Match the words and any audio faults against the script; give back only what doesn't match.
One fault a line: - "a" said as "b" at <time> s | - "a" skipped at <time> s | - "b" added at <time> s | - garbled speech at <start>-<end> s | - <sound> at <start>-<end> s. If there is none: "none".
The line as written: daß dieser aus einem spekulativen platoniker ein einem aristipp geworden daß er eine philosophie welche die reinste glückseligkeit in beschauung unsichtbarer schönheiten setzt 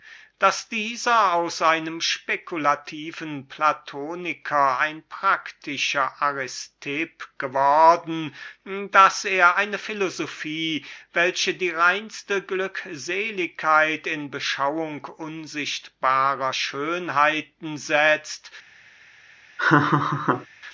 - "einem" said as "praktischer" at 5.1 s
- laugh at 19.6-20.5 s